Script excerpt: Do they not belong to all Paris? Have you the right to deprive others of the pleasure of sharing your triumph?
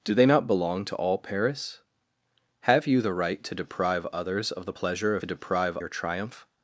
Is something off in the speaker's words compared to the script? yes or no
yes